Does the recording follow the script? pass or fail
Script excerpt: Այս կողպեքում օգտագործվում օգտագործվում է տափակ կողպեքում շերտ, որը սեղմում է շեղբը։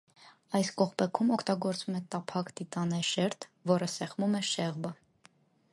fail